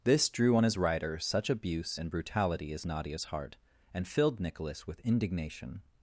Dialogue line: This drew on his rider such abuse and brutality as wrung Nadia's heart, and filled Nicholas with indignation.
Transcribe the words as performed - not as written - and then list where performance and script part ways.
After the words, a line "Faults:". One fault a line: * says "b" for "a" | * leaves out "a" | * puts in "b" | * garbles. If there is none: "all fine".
This drew on his rider such abuse and brutality as Nadia's heart, and filled Nicholas with indignation.
Faults:
* leaves out "wrung"